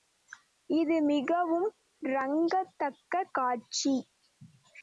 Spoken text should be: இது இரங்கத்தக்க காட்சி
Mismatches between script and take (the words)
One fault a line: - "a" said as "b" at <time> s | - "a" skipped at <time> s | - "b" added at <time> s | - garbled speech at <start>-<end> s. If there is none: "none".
- "மிகவும்" added at 1.0 s